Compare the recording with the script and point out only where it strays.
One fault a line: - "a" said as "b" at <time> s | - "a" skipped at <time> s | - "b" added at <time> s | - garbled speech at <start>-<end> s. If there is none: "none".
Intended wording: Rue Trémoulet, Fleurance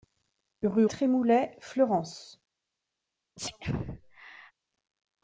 none